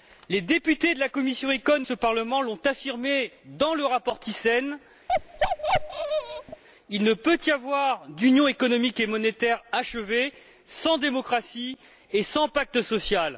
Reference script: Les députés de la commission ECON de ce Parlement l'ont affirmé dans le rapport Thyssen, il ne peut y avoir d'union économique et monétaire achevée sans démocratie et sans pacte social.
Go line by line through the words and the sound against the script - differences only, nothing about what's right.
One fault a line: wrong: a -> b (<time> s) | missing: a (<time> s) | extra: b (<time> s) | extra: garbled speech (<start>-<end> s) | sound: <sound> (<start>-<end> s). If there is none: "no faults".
missing: de (1.8 s)
sound: bark (5.1-6.6 s)